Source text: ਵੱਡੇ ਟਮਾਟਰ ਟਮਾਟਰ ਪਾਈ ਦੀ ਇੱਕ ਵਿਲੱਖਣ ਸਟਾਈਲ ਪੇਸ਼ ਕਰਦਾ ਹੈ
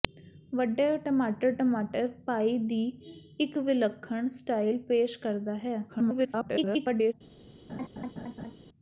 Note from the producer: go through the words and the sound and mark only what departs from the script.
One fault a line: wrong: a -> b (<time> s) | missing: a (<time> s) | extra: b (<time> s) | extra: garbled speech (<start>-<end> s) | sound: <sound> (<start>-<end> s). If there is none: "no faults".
extra: garbled speech (5.9-7.1 s)
sound: laugh (7.7-8.5 s)